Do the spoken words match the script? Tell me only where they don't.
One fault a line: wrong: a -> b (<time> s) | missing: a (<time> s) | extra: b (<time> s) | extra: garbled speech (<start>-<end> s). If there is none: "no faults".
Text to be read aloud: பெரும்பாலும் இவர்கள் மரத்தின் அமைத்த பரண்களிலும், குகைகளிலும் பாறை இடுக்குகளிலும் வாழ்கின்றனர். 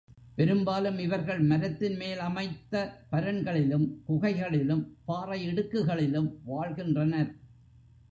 extra: மேல் (2.0 s)